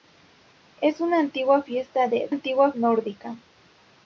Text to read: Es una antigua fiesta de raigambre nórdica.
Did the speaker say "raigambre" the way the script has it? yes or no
no